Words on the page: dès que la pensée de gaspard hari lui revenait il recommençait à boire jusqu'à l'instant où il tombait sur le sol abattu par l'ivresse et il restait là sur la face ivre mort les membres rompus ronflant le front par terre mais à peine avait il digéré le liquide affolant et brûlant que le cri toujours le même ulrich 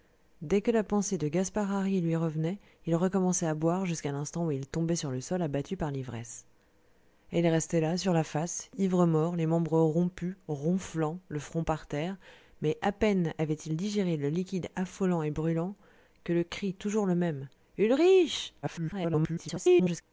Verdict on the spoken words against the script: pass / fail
fail